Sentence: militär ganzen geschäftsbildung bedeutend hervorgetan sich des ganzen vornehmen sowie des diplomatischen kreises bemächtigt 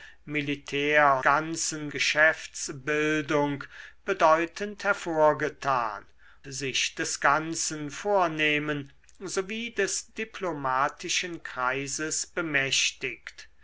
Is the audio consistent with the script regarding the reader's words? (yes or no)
yes